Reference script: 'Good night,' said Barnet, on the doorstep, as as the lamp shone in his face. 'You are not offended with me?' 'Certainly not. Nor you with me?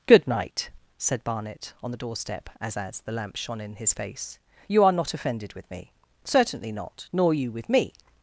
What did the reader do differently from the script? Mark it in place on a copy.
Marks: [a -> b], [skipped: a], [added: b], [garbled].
'Good night,' said Barnet, on the doorstep, as as the lamp shone in his face. 'You are not offended with me?' 'Certainly not. Nor you with me?